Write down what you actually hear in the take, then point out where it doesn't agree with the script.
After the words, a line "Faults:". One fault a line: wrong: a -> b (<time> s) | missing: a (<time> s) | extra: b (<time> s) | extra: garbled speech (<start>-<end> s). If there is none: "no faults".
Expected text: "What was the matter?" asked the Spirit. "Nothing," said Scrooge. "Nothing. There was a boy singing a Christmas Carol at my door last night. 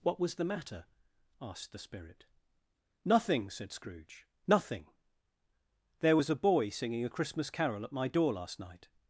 "What was the matter?" asked the Spirit. "Nothing," said Scrooge. "Nothing. There was a boy singing a Christmas Carol at my door last night.
Faults:
no faults